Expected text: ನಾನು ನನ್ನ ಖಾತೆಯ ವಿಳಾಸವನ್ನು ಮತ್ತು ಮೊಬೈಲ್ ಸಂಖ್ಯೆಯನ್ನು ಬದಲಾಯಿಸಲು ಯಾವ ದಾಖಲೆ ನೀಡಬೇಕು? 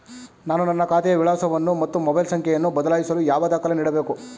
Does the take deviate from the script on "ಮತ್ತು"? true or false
false